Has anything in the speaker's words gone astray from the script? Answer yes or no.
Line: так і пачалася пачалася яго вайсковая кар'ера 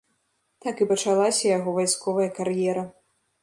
yes